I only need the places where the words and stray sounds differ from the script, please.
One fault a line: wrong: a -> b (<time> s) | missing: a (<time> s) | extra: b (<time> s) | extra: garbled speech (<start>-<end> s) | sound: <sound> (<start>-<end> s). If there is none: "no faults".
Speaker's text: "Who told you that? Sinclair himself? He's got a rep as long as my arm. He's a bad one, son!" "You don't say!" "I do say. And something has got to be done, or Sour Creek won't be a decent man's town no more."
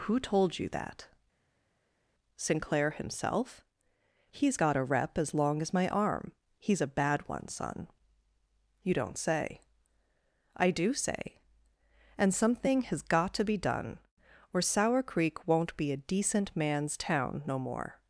no faults